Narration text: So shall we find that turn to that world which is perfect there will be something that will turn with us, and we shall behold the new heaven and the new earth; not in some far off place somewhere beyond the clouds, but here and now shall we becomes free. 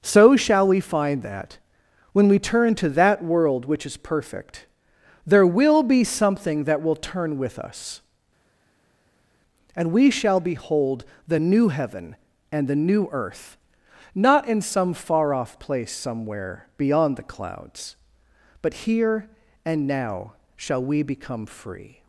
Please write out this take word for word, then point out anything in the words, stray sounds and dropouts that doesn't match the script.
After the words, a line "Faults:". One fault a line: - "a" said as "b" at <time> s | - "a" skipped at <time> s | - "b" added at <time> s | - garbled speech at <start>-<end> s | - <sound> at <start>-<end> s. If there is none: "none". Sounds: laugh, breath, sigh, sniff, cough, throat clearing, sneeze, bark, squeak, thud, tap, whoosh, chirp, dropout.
So shall we find that when we turn to that world which is perfect there will be something that will turn with us, and we shall behold the new heaven and the new earth; not in some far off place somewhere beyond the clouds, but here and now shall we become free.
Faults:
- "when we" added at 2.1 s
- "becomes" said as "become" at 21.0 s